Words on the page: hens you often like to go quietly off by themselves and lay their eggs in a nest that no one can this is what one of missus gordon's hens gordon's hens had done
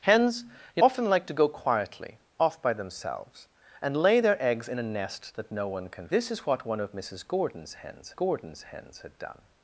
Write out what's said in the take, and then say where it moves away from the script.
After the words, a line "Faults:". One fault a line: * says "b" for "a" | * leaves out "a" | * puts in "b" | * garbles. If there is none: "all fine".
hens you often like to go quietly off by themselves and lay their eggs in a nest that no one can this is what one of missus gordon's hens gordon's hens had done
Faults:
all fine